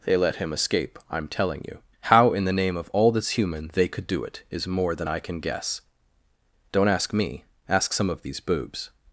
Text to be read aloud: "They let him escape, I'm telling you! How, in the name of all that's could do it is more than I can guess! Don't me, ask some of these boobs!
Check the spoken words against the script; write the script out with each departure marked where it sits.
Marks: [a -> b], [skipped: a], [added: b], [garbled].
"They let him escape, I'm telling you! How, in the name of all that's [added: human they] could do it is more than I can guess! Don't [added: ask] me, ask some of these boobs!